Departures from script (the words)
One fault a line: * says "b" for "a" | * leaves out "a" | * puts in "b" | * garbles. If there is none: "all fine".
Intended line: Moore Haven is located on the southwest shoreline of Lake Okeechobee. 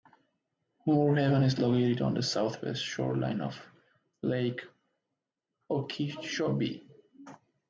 all fine